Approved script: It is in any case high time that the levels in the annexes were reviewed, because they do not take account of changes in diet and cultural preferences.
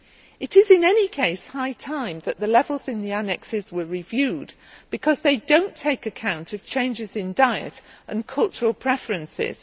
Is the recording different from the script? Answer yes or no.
no